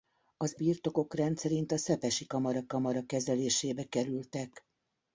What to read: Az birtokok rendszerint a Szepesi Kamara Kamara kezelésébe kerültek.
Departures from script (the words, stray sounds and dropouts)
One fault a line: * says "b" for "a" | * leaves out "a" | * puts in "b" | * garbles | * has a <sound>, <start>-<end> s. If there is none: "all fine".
all fine